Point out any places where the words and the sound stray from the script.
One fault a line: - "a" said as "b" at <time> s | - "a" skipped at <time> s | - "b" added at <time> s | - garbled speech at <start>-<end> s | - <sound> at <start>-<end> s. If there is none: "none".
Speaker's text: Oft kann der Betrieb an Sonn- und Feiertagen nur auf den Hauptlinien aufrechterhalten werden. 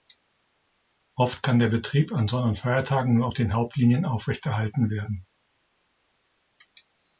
none